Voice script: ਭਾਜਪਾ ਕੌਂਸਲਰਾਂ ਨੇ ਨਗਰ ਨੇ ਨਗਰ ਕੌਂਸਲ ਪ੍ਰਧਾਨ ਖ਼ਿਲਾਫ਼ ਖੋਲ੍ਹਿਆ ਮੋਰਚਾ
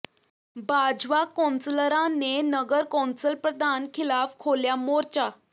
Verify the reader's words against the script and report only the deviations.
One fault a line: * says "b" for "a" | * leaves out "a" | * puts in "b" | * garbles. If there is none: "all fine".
* leaves out "ਨੇ ਨਗਰ"